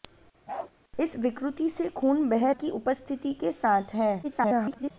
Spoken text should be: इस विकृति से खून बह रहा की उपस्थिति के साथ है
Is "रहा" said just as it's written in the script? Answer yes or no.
no